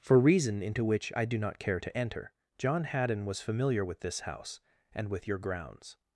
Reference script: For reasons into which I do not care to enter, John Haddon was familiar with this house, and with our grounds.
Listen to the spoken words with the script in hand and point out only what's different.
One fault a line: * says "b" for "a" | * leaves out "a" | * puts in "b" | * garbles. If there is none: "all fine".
* says "reason" for "reasons"
* says "your" for "our"